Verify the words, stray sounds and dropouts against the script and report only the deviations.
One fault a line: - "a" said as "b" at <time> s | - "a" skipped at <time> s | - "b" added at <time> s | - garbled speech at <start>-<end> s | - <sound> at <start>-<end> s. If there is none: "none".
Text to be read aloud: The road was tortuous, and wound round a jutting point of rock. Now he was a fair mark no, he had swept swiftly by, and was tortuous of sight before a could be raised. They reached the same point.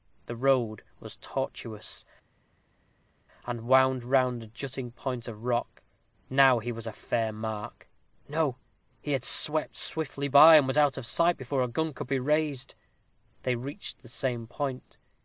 - "tortuous" said as "out" at 10.8 s
- "gun" added at 11.7 s